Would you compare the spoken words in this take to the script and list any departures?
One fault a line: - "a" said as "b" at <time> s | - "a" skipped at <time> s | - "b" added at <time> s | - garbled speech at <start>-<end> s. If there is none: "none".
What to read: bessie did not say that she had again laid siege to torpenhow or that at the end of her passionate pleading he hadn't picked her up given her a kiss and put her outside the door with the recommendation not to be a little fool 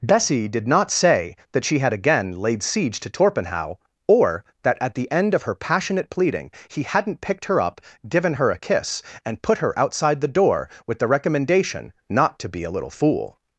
none